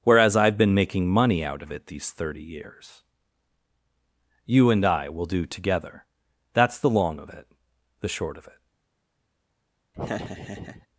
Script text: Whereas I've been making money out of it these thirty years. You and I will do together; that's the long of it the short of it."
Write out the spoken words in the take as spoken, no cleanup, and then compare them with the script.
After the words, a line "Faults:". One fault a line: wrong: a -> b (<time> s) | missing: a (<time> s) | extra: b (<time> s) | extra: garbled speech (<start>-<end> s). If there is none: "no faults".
Whereas I've been making money out of it these thirty years. You and I will do together; that's the long of it the short of it."
Faults:
no faults